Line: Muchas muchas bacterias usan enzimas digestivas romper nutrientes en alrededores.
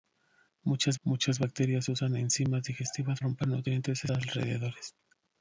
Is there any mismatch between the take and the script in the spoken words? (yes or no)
no